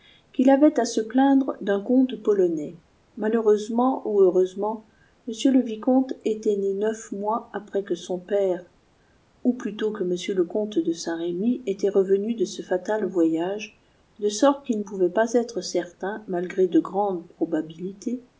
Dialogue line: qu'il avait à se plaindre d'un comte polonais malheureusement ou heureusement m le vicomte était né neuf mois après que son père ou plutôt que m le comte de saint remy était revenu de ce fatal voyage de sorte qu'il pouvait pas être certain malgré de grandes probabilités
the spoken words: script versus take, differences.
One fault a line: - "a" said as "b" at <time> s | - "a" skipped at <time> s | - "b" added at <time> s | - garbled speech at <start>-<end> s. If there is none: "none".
none